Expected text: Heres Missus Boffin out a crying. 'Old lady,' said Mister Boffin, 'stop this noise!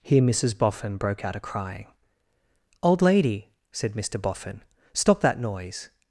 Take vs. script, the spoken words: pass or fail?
fail